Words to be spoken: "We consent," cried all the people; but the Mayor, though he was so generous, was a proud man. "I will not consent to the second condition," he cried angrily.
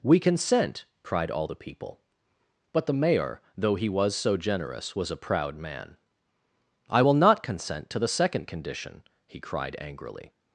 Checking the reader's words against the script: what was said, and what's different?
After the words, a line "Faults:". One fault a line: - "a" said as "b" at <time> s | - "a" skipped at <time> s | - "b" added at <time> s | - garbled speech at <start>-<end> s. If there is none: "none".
"We consent," cried all the people; but the Mayor, though he was so generous, was a proud man. "I will not consent to the second condition," he cried angrily.
Faults:
none